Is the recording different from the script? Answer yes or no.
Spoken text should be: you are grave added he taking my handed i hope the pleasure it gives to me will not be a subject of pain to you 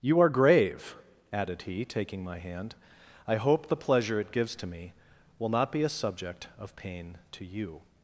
yes